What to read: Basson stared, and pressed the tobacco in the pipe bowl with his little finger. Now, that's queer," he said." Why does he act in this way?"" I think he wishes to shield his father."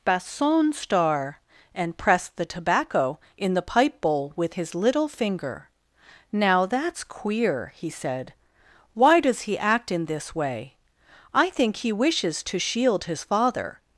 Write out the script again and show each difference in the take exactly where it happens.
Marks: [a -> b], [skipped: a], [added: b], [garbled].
Basson [stared, -> star] and pressed the tobacco in the pipe bowl with his little finger. Now, that's queer," he said." Why does he act in this way?"" I think he wishes to shield his father."